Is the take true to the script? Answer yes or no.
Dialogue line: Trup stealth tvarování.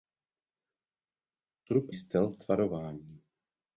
yes